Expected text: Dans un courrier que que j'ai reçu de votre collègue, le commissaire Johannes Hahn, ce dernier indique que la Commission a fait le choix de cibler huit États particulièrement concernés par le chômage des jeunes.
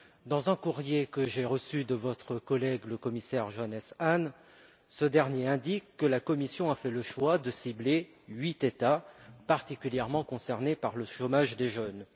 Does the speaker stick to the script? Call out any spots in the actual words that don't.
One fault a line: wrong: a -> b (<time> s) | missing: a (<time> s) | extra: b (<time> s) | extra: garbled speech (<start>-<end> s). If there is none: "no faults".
missing: que (1.2 s)